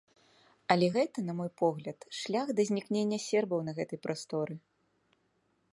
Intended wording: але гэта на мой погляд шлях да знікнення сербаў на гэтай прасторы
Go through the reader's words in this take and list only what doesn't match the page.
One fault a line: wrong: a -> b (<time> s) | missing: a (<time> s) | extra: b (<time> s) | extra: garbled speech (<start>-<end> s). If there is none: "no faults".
no faults